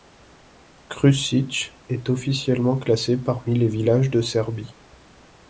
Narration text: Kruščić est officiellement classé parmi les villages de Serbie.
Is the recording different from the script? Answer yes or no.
no